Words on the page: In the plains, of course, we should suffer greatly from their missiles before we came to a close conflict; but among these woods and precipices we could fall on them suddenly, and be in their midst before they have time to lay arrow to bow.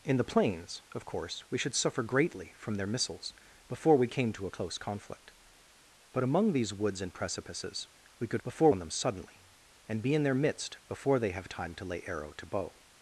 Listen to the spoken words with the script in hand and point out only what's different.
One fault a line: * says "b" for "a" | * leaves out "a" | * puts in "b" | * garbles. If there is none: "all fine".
* says "before" for "fall"